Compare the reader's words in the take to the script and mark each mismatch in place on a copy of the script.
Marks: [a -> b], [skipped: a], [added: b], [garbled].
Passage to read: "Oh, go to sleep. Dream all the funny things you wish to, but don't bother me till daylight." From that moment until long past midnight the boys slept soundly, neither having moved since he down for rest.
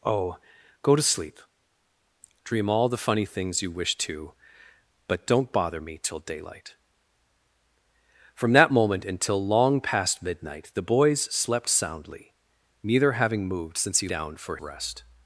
"Oh, go to sleep. Dream all the funny things you wish to, but don't bother me till daylight." From that moment until long past midnight the boys slept soundly, neither having moved since he down for rest.